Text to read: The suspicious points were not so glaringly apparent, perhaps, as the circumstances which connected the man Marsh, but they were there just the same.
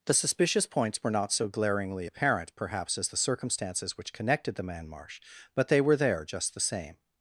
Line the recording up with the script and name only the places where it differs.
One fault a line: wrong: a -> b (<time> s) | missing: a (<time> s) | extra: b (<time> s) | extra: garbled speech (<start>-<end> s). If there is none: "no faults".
no faults